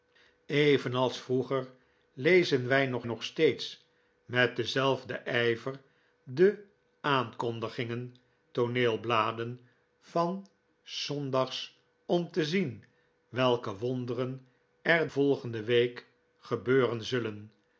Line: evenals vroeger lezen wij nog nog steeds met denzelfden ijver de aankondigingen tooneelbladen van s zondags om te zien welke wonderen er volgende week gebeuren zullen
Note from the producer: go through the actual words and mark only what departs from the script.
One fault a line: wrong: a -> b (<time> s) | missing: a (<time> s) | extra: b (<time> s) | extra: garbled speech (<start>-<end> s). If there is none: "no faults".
no faults